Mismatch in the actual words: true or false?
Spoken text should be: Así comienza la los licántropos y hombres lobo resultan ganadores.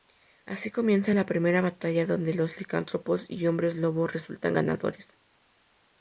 true